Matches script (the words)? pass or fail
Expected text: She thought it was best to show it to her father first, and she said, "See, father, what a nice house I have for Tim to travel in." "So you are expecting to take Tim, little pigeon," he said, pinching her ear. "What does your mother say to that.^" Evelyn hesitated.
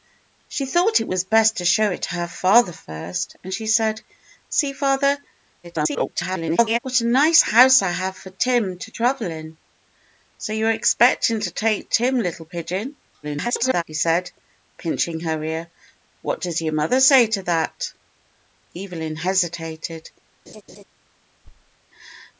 fail